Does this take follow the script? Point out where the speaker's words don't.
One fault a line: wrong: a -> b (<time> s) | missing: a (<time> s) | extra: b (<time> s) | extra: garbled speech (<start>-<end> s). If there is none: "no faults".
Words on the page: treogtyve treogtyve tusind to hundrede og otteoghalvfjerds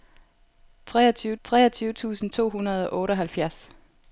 no faults